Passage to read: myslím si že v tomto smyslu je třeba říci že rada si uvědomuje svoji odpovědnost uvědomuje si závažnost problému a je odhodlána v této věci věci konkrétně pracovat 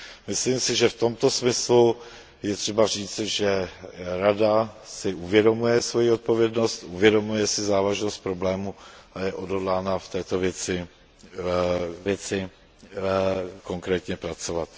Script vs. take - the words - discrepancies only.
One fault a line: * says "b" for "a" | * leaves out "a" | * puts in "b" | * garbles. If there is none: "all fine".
all fine